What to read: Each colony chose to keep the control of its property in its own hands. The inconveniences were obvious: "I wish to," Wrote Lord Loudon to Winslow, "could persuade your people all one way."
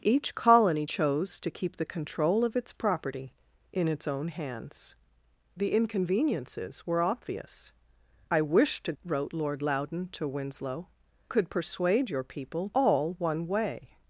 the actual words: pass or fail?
pass